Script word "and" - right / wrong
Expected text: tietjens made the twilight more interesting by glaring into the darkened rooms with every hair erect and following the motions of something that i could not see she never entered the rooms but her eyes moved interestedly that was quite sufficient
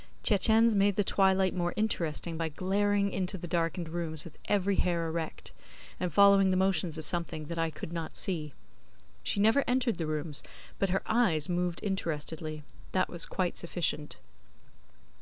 right